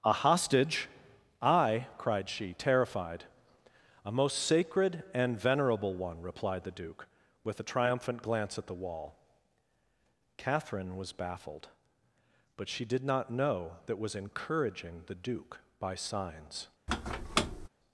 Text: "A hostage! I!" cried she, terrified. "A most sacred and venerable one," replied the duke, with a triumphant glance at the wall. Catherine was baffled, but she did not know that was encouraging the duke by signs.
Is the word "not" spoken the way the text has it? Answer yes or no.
yes